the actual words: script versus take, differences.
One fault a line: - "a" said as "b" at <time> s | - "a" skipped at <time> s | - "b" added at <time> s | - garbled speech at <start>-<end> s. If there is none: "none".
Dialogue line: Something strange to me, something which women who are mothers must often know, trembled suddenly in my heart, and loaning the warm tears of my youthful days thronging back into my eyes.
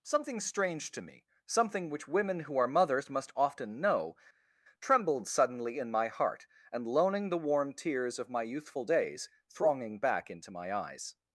none